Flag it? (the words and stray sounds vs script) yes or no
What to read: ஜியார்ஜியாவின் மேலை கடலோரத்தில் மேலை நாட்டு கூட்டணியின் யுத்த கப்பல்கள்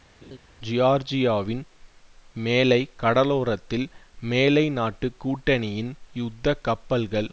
yes